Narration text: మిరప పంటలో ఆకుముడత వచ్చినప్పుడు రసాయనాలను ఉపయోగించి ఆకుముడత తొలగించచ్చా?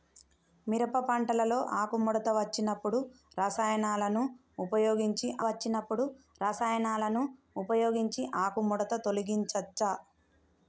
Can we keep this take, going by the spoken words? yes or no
no